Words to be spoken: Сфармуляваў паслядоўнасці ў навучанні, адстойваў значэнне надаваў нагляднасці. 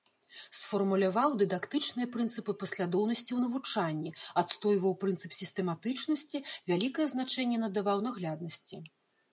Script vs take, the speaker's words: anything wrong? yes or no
yes